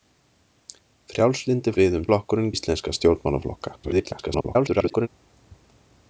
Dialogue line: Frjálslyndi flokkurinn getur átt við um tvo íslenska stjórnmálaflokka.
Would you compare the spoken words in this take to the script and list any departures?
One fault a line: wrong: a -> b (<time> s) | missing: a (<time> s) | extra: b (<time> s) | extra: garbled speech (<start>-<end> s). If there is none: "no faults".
missing: flokkurinn getur átt (1.7 s)
wrong: tvo -> flokkurinn (2.1 s)
extra: garbled speech (3.8-5.1 s)